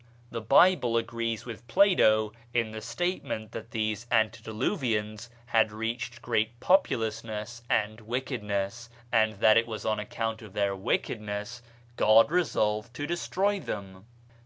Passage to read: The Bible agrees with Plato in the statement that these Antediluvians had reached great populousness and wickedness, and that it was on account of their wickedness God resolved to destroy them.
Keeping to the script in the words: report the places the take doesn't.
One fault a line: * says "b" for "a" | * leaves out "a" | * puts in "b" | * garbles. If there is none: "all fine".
all fine